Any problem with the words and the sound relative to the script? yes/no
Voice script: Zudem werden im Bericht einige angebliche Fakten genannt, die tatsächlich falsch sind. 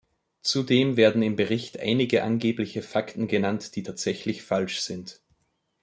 no